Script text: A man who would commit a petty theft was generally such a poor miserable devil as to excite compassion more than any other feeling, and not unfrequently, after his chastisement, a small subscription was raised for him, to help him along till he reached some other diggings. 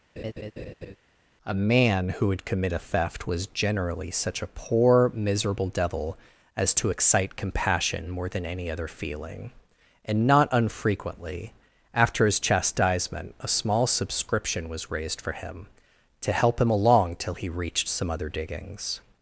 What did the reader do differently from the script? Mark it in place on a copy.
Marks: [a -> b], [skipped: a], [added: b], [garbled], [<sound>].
[laugh] A man who would commit a [skipped: petty] theft was generally such a poor miserable devil as to excite compassion more than any other feeling, and not unfrequently, after his chastisement, a small subscription was raised for him, to help him along till he reached some other diggings.